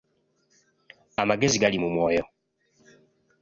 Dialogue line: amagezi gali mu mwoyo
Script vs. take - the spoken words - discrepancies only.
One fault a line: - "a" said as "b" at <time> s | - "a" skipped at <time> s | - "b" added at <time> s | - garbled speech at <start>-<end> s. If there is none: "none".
none